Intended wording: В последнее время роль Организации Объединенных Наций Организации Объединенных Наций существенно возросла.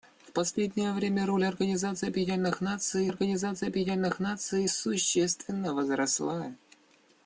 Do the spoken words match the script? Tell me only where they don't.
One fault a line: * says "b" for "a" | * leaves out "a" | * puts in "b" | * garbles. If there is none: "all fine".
all fine